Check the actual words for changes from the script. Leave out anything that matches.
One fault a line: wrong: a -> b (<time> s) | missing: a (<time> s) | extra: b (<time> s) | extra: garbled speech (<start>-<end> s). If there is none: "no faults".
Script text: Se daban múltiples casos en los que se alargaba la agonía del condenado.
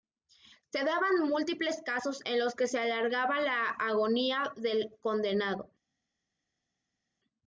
no faults